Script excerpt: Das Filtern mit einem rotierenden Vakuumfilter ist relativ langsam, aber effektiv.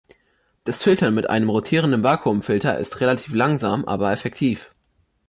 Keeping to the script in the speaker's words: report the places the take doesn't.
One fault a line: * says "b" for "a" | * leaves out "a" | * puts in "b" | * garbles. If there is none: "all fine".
all fine